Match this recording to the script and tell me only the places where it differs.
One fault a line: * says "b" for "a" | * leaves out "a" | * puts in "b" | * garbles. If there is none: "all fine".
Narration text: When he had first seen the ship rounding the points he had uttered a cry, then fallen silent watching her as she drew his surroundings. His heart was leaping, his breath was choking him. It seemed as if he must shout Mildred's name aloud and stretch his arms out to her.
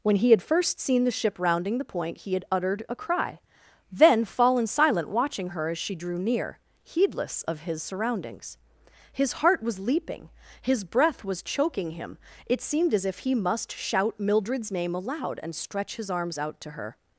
* says "point" for "points"
* puts in "near heedless of"